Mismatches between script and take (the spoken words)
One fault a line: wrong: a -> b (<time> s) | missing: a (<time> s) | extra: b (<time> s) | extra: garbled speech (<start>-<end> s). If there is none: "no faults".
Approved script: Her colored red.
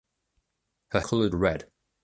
no faults